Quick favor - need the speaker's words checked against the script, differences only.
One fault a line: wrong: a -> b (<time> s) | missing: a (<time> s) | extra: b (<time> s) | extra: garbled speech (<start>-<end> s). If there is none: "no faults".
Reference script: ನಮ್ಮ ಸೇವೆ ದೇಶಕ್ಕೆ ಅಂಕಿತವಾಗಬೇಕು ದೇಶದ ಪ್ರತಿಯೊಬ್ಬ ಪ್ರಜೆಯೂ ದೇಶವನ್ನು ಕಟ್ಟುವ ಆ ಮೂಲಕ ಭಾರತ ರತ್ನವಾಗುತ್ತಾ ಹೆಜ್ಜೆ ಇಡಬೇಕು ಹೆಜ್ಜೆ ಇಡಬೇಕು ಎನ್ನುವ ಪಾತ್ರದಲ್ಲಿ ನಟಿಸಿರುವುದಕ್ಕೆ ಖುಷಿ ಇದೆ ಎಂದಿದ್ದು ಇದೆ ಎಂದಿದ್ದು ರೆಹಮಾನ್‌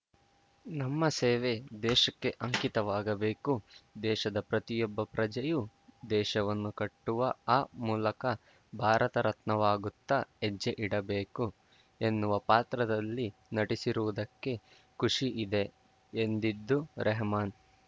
missing: ಹೆಜ್ಜೆ ಇಡಬೇಕು (11.4 s)
missing: ಇದೆ ಎಂದಿದ್ದು (16.8 s)